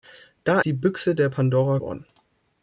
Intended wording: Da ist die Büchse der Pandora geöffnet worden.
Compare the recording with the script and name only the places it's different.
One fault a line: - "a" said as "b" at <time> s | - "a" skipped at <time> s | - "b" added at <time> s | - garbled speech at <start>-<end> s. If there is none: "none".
- "ist" skipped at 0.6 s
- "geöffnet" skipped at 1.8 s